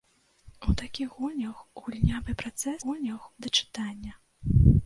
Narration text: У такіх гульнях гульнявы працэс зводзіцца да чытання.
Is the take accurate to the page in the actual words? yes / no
no